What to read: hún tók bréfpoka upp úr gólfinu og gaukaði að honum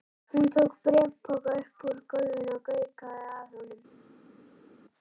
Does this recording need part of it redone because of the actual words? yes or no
no